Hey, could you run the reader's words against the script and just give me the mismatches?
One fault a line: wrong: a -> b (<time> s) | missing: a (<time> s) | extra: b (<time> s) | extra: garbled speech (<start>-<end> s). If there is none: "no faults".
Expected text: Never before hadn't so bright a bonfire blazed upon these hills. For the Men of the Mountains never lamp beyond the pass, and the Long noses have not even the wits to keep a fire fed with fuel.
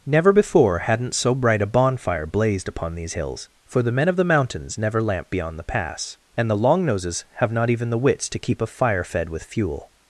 no faults